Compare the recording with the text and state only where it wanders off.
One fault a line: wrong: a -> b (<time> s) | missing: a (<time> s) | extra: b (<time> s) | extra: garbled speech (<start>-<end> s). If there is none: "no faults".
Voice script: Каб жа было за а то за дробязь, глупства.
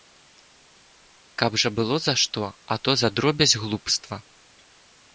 extra: што (2.2 s)